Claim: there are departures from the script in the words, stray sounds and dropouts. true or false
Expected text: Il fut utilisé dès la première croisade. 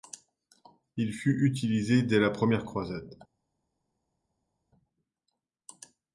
false